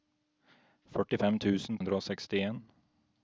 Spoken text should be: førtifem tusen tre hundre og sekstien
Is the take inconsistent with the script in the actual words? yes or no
yes